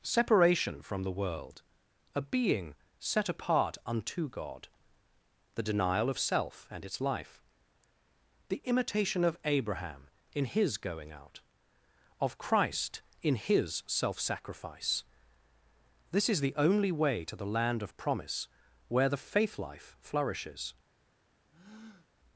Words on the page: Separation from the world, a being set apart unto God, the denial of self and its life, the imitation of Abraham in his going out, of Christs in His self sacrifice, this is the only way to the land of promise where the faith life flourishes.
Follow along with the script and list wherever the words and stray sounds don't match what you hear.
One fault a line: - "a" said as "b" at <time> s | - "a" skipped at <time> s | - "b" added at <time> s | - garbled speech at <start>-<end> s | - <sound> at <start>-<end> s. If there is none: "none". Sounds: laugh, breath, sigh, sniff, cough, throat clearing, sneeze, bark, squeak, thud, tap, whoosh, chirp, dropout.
- "Christs" said as "Christ" at 12.4 s
- breath at 21.5-22.1 s